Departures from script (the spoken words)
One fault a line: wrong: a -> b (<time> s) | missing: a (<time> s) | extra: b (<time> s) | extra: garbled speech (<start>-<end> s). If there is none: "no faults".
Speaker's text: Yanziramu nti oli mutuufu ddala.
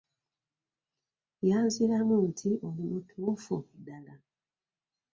no faults